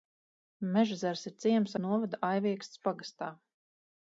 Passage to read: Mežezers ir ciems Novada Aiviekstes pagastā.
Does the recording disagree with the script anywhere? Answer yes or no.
no